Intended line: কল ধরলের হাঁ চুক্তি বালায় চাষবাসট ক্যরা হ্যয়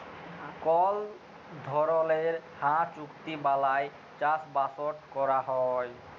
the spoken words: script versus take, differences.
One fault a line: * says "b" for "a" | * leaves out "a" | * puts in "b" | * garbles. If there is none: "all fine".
all fine